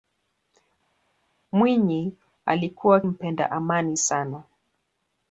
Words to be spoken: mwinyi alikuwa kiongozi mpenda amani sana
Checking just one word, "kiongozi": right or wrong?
wrong